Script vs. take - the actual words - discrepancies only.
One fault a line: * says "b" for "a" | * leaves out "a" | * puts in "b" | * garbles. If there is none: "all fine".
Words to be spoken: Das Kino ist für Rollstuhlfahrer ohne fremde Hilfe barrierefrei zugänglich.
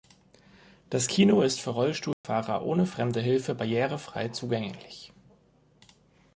all fine